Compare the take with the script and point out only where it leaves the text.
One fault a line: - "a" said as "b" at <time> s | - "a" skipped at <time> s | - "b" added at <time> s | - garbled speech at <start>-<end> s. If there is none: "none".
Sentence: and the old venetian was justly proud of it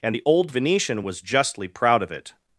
none